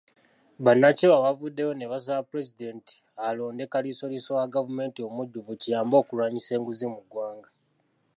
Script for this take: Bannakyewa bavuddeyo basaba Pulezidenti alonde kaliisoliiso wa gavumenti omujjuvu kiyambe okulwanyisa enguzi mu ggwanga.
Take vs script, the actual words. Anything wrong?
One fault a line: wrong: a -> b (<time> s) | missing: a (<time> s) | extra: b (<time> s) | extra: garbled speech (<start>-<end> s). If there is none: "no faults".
extra: ne (1.8 s)